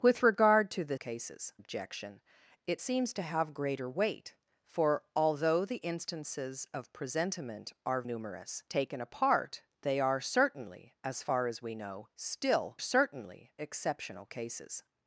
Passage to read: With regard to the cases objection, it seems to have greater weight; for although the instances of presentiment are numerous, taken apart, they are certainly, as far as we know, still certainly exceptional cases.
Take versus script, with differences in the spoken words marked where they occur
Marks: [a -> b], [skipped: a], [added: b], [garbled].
With regard to the cases objection, it seems to have greater weight; for although the instances of presentiment are numerous, taken apart, they are certainly, as far as we know, still certainly exceptional cases.